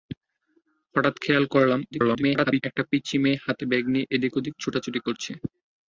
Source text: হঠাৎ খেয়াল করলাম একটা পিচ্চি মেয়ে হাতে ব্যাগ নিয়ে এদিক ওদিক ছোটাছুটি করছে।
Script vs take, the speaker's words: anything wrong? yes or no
yes